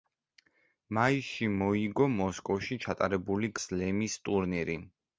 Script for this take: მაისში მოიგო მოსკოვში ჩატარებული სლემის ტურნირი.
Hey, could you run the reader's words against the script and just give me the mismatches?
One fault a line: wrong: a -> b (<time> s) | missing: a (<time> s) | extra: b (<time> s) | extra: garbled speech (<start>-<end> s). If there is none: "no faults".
no faults